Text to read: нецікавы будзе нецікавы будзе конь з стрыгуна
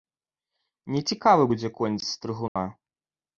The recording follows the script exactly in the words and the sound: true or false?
false